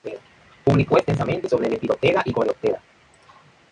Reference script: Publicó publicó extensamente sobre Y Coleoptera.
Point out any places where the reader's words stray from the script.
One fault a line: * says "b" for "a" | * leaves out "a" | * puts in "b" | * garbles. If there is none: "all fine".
* leaves out "publicó"
* puts in "Lepidoptera"